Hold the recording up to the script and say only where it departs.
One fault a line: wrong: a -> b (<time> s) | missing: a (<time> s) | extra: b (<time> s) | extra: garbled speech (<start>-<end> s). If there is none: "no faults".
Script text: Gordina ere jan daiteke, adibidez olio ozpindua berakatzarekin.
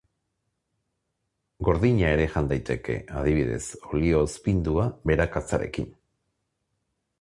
no faults